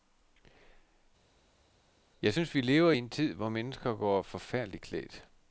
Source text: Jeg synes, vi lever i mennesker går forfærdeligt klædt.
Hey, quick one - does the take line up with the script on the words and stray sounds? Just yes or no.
no